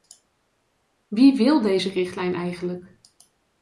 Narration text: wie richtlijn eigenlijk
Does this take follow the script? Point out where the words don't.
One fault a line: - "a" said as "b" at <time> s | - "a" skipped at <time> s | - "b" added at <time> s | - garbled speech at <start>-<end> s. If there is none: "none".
- "wil deze" added at 1.4 s